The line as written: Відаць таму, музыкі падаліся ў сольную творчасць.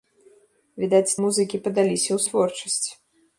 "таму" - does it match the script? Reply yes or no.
no